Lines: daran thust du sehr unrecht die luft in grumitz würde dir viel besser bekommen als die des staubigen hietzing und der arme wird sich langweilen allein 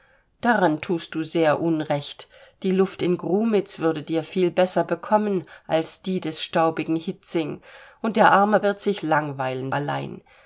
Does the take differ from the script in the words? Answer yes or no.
no